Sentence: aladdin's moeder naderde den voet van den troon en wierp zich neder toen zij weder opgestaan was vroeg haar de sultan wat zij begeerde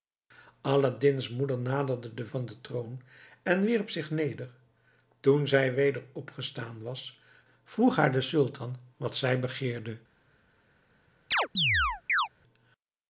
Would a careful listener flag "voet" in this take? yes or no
yes